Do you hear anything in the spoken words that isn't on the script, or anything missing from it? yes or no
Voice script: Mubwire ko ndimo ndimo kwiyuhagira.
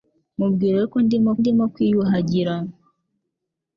no